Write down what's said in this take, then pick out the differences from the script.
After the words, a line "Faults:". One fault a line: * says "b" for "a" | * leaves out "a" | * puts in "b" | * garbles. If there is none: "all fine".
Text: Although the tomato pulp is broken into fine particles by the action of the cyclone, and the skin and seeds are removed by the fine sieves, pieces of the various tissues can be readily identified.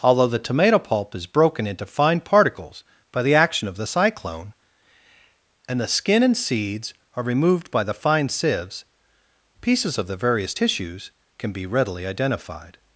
Although the tomato pulp is broken into fine particles by the action of the cyclone, and the skin and seeds are removed by the fine sieves, pieces of the various tissues can be readily identified.
Faults:
all fine